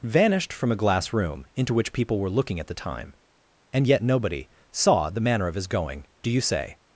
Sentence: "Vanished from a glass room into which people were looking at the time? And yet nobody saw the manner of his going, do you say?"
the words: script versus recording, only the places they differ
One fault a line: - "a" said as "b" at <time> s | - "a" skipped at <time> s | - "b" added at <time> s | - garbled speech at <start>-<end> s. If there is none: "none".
none